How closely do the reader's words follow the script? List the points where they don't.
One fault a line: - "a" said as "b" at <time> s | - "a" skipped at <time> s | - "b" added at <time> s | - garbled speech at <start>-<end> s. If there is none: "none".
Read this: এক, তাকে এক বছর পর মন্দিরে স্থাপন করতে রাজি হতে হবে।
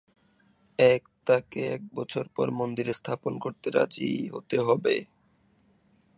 none